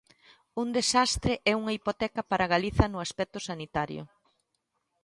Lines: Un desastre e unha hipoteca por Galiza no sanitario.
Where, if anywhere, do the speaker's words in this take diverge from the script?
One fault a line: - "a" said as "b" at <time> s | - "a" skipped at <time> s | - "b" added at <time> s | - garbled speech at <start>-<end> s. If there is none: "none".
- "por" said as "para" at 2.3 s
- "aspecto" added at 3.0 s